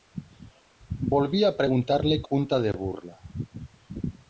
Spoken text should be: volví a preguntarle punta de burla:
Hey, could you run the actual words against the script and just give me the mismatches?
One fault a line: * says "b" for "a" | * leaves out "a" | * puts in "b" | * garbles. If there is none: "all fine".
all fine